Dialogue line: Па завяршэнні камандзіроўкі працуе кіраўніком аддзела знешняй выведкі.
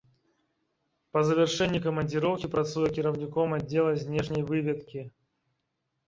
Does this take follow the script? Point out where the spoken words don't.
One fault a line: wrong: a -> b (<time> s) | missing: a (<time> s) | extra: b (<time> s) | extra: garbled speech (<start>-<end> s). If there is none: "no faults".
no faults